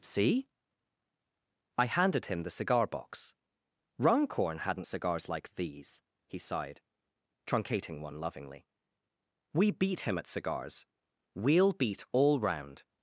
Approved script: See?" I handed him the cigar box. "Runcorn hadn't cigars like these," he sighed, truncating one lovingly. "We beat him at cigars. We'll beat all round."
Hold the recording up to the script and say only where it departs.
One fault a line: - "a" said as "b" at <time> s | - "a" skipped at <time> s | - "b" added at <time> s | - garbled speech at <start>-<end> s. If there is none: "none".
none